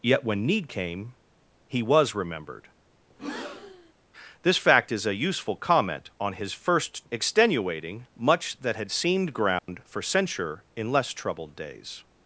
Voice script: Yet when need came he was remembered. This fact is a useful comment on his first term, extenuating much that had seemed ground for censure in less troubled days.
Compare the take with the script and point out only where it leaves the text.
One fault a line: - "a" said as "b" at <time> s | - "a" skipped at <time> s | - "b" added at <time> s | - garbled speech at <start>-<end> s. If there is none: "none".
- "term" skipped at 7.1 s